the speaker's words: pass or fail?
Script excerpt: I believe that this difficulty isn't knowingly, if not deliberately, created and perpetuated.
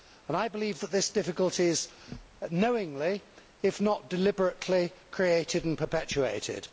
fail